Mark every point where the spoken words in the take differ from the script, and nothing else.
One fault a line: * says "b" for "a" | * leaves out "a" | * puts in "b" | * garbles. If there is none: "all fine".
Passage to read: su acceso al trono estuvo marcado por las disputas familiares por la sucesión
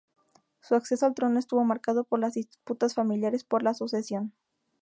all fine